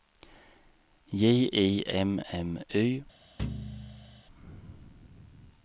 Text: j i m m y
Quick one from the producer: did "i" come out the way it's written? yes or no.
yes